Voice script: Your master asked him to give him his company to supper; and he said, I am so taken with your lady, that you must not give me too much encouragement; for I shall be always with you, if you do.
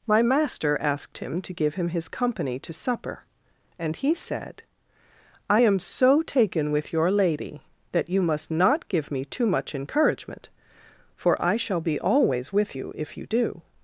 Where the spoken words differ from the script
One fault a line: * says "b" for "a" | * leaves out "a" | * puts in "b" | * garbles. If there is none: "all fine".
* says "My" for "Your"